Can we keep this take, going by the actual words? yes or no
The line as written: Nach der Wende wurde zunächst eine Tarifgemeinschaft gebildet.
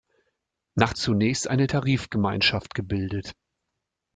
no